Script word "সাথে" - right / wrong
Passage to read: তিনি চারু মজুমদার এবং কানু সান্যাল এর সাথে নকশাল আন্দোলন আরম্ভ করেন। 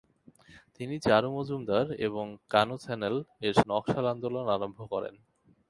wrong